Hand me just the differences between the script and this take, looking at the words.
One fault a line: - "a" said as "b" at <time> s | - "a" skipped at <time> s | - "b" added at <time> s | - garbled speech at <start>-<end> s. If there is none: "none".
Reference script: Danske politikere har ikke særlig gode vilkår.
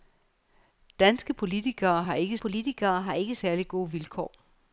- "politikere har ikke" added at 2.4 s